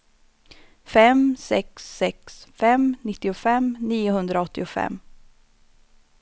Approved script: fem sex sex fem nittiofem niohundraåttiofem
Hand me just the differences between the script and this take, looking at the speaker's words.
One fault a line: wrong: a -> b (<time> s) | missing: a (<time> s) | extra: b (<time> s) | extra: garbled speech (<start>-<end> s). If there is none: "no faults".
no faults